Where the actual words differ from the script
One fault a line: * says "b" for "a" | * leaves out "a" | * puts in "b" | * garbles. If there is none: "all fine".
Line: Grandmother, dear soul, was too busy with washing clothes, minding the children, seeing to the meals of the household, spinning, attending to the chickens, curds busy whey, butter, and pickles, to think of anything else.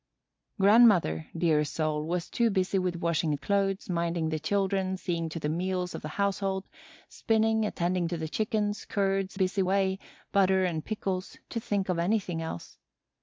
all fine